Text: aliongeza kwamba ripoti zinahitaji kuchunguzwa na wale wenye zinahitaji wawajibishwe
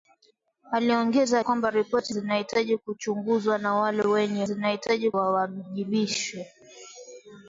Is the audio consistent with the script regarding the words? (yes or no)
yes